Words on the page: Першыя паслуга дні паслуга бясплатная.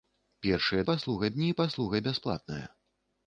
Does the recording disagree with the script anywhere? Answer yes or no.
no